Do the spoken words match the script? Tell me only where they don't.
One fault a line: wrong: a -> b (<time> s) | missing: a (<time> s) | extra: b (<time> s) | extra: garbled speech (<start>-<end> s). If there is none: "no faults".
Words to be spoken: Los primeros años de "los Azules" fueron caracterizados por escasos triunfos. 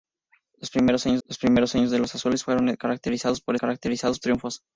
extra: los primeros años (1.2 s)
wrong: escasos -> caracterizados (3.5 s)